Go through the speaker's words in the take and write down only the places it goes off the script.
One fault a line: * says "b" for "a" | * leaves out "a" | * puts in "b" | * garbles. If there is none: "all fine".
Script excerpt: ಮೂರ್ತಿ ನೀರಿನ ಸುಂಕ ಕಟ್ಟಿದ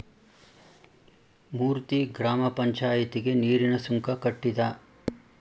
* puts in "ಗ್ರಾಮ ಪಂಚಾಯಿತಿಗೆ"